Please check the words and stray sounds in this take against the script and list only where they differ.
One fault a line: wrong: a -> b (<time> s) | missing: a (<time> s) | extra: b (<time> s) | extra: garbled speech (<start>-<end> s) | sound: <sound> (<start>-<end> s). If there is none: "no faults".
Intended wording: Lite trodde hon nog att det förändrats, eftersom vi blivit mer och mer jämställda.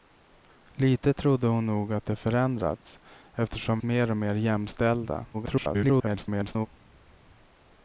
missing: vi blivit (3.8 s)
extra: garbled speech (5.3-6.7 s)